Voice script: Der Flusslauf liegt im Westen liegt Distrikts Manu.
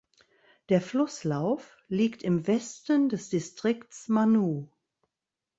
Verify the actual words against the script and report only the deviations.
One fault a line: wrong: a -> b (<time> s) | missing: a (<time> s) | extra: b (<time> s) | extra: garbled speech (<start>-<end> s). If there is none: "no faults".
wrong: liegt -> des (3.1 s)